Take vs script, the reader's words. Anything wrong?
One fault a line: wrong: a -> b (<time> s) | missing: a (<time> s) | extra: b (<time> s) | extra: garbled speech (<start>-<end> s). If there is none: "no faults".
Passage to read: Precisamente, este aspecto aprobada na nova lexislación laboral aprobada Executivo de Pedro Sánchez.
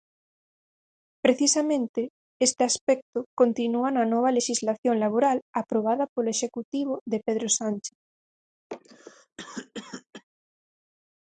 wrong: aprobada -> continúa (3.4 s)
extra: polo (6.1 s)